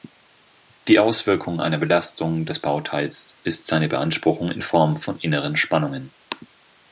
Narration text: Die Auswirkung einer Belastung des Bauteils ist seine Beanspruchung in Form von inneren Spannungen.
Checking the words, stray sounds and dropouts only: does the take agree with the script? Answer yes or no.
yes